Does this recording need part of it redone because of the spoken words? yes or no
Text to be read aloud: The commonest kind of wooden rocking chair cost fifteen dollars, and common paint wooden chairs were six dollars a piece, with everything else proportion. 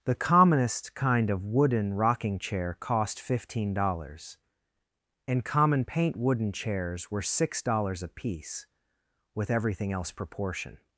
no